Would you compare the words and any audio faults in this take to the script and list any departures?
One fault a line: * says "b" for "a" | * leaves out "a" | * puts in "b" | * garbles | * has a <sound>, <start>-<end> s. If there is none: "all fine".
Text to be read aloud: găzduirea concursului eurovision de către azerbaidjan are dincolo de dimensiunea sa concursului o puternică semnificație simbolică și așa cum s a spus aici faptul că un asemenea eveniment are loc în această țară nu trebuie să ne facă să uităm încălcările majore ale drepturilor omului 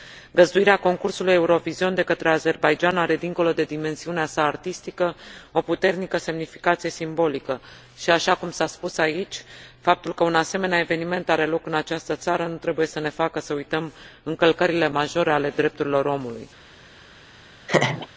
* says "artistică" for "concursului"
* has a laugh, 17.7-18.1 s